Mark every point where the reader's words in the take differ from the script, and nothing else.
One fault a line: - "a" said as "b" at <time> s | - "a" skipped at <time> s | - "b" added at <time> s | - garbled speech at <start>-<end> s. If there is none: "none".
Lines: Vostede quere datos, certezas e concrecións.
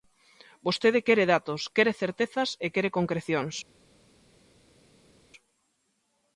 - "quere" added at 1.7 s
- "quere" added at 2.7 s